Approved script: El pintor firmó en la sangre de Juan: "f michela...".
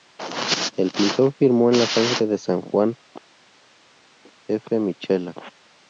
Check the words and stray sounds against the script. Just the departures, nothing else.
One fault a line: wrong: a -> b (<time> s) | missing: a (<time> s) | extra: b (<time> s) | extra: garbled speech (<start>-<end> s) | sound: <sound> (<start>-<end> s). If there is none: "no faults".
extra: San (2.4 s)